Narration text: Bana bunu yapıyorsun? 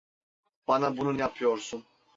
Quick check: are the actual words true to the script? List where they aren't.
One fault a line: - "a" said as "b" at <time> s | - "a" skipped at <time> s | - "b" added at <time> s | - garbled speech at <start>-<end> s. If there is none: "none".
none